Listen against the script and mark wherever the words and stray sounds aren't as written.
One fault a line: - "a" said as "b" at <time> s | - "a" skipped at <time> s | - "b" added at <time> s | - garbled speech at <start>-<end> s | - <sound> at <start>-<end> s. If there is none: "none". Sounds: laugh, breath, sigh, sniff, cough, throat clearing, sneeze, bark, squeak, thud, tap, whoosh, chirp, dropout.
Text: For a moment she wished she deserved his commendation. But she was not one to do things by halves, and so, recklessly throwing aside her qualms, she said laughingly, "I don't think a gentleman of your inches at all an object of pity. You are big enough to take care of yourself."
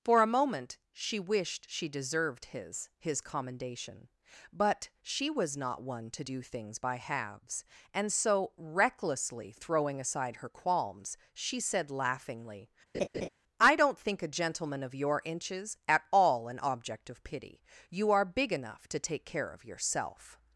- "his" added at 3.0 s
- laugh at 12.9-13.3 s